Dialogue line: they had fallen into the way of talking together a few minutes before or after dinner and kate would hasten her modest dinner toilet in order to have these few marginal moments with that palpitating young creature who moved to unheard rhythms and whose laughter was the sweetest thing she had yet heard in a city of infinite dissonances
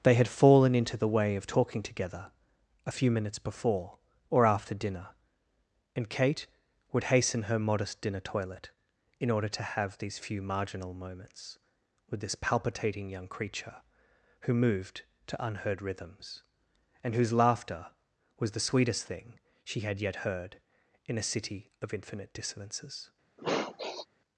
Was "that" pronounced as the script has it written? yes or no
no